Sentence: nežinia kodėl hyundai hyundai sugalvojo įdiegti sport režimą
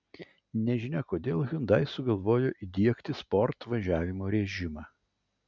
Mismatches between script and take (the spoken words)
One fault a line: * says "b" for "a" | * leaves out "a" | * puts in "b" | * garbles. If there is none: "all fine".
* leaves out "hyundai"
* puts in "važiavimo"